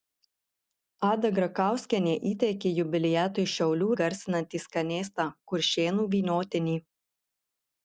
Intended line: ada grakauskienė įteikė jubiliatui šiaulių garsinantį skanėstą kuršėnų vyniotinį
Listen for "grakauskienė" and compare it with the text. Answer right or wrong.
right